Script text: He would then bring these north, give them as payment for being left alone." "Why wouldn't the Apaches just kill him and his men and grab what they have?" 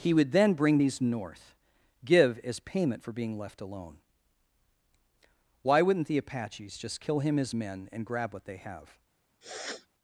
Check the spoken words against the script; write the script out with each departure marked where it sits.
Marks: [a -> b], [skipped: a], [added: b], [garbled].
He would then bring these north, give [skipped: them] as payment for being left alone." "Why wouldn't the Apaches just kill him [skipped: and] his men and grab what they have?"